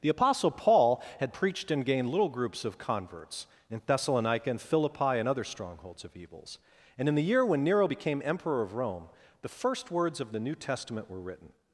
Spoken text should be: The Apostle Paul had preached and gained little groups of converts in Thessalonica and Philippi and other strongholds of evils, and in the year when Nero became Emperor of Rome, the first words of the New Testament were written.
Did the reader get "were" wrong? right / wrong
right